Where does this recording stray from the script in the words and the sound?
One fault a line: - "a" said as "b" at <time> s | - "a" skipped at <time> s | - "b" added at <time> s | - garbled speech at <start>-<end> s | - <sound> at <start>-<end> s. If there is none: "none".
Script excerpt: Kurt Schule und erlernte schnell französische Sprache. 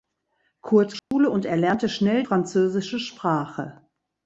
- dropout at 1.0-1.1 s